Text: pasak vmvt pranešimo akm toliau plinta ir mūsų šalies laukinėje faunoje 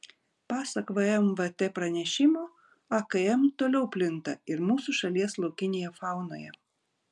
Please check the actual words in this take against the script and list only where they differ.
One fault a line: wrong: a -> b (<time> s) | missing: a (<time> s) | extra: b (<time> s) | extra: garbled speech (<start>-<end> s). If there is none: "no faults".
no faults